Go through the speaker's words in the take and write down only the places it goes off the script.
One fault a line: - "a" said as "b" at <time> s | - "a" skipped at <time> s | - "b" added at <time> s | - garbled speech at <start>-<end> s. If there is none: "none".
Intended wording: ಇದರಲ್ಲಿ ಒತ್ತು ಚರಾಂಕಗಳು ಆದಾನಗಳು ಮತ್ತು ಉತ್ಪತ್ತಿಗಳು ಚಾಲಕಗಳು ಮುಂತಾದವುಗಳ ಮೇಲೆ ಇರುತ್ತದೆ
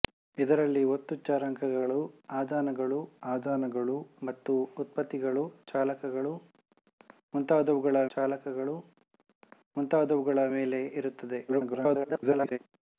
- "ಆದಾನಗಳು" added at 3.3 s
- "ಚಾಲಕಗಳು ಮುಂತಾದವುಗಳ" added at 8.1 s
- garbled speech at 11.5-12.6 s